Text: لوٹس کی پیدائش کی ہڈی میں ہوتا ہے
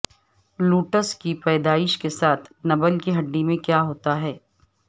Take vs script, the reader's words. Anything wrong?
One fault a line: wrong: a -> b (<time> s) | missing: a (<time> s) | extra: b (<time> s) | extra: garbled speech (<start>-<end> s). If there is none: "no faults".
extra: کے ساتھ نبل (2.0 s)
extra: کیا (3.6 s)